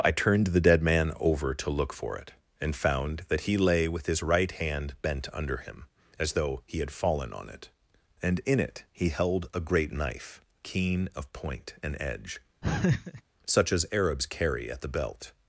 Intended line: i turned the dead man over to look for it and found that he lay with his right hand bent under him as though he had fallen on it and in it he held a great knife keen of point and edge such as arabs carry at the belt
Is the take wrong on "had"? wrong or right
right